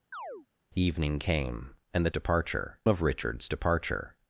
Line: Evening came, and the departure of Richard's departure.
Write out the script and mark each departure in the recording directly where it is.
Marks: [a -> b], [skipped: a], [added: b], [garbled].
Evening came, and the departure of Richard's departure.